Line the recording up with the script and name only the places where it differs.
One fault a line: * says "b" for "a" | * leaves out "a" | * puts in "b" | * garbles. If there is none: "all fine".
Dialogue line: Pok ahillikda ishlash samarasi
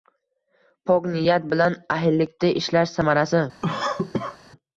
* puts in "niyat bilan"